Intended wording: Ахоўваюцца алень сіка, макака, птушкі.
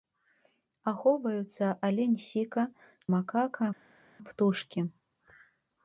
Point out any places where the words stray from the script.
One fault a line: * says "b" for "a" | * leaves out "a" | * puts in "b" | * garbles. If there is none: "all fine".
all fine